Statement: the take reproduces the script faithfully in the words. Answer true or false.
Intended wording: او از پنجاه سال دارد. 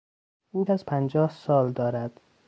true